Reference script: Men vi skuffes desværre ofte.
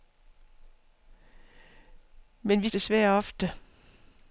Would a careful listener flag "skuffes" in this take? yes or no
yes